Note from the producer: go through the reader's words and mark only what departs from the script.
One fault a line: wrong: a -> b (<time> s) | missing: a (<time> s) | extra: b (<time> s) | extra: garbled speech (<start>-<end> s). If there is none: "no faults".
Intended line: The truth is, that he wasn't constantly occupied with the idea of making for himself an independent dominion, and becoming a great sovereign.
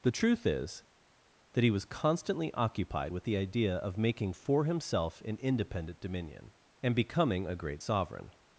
wrong: wasn't -> was (1.7 s)